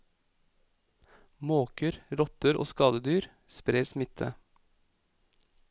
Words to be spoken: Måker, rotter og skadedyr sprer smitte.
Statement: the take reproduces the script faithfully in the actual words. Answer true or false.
true